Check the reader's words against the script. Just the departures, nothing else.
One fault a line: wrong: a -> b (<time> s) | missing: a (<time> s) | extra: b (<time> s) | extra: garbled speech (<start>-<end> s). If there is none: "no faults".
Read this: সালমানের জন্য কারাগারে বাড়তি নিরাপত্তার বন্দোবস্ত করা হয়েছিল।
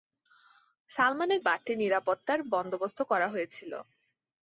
missing: জন্য কারাগারে (1.4 s)